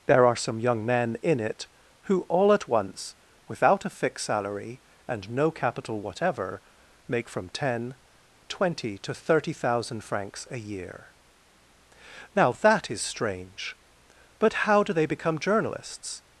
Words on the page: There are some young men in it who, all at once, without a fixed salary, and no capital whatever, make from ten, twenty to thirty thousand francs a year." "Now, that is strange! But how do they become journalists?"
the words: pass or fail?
pass